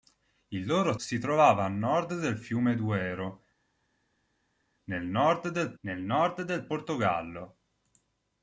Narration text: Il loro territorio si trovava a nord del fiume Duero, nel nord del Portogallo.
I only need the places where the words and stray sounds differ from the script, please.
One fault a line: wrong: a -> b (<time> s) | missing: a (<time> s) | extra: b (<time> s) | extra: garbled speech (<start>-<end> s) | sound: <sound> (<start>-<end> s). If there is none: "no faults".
missing: territorio (0.9 s)
extra: nel nord del (5.8 s)